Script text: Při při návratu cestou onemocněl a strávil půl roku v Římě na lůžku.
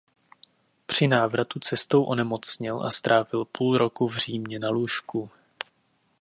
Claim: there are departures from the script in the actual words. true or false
true